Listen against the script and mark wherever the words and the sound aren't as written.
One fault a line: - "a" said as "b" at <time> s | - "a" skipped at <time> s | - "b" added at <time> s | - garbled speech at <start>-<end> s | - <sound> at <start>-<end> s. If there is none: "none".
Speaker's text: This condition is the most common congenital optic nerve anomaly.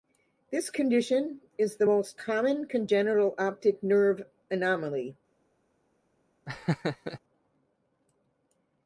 - laugh at 6.5-7.2 s